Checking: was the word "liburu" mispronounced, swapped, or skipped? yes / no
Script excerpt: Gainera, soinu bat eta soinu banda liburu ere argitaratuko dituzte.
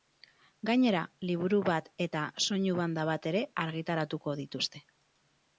yes